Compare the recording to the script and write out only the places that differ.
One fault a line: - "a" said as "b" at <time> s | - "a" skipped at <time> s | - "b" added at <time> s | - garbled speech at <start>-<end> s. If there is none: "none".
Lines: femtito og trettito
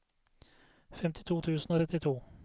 - "tusen" added at 1.4 s